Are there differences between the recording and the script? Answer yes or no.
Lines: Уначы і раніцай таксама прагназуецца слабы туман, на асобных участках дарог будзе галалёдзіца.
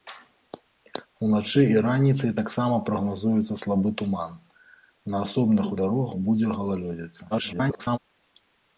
yes